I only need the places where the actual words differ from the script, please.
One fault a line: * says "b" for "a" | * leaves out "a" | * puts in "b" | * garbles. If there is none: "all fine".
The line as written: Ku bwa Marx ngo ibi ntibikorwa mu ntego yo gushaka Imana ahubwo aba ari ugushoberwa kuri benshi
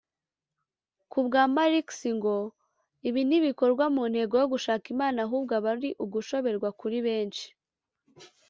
all fine